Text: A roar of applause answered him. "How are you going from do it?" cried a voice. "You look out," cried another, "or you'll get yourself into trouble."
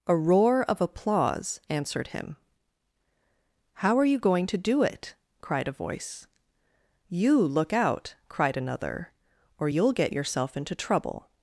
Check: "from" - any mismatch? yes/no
yes